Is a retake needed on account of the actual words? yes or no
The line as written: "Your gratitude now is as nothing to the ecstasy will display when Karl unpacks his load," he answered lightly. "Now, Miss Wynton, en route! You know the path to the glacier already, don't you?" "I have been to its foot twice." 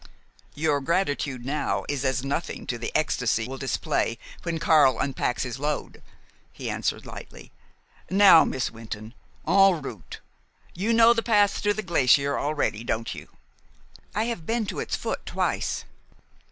no